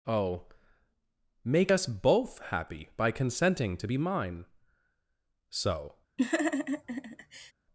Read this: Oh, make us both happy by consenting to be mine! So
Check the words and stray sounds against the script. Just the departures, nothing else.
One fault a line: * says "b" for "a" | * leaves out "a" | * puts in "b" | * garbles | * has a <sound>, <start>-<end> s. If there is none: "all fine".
* has a laugh, 6.2-7.5 s